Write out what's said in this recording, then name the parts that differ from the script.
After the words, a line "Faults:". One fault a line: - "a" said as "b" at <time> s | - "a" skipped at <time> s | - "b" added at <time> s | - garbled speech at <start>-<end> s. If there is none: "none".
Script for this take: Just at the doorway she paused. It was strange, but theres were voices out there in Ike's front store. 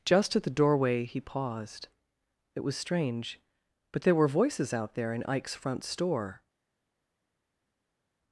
Just at the doorway he paused. It was strange, but there were voices out there in Ike's front store.
Faults:
- "she" said as "he" at 1.1 s
- "theres" said as "there" at 4.0 s